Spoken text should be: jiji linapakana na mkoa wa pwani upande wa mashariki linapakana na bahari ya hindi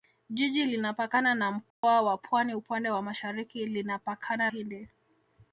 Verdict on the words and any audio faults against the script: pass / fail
fail